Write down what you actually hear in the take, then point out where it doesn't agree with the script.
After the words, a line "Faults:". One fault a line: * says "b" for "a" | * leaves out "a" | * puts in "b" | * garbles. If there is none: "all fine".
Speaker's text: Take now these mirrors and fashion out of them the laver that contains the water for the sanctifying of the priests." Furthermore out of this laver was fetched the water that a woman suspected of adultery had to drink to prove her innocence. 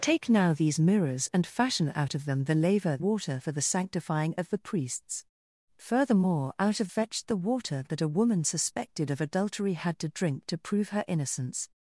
Take now these mirrors and fashion out of them the laver water for the sanctifying of the priests." Furthermore out of fetched the water that a woman suspected of adultery had to drink to prove her innocence.
Faults:
* leaves out "that contains the"
* leaves out "this laver was"